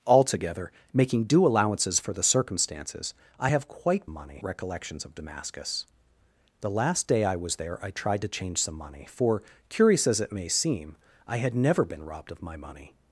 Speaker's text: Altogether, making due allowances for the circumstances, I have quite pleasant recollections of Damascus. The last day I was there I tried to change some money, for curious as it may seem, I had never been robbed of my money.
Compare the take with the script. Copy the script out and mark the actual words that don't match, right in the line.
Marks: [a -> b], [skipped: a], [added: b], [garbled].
Altogether, making due allowances for the circumstances, I have quite [pleasant -> money] recollections of Damascus. The last day I was there I tried to change some money, for curious as it may seem, I had never been robbed of my money.